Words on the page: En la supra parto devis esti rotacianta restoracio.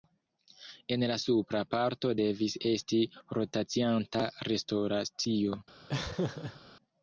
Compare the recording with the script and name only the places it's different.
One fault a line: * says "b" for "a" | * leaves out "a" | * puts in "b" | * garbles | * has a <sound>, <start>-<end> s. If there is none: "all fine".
* has a laugh, 5.9-6.6 s